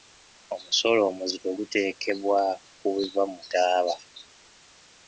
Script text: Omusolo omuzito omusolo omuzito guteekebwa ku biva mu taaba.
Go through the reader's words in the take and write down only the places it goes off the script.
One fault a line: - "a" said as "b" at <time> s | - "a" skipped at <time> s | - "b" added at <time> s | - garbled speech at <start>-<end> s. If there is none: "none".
- "omusolo omuzito" skipped at 1.5 s